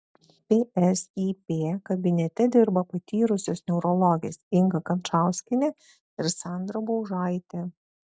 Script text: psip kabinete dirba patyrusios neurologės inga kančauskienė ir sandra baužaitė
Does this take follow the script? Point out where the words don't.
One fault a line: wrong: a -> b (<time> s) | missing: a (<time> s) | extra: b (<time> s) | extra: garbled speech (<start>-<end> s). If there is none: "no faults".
no faults